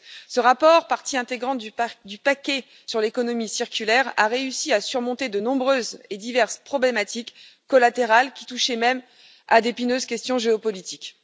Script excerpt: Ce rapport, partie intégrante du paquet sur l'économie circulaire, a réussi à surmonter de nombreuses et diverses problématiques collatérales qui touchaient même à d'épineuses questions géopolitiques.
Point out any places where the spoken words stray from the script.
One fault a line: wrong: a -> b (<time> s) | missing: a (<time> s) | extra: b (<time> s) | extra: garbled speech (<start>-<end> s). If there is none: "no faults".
no faults